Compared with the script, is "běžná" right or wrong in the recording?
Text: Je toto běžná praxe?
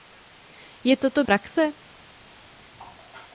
wrong